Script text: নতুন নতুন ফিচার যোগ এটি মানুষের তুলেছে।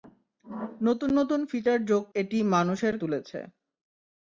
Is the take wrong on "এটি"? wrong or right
right